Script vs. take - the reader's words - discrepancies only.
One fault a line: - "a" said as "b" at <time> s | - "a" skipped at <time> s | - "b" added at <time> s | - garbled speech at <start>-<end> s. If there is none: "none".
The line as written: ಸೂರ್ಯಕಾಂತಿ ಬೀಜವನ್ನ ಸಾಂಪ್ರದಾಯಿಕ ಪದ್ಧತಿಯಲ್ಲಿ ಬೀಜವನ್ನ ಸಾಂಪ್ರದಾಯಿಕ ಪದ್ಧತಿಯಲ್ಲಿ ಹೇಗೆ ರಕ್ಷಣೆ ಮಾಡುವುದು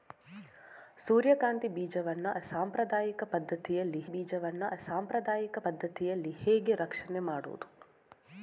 none